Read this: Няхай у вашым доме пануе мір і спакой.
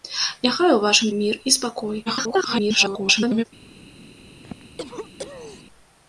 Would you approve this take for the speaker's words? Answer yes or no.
no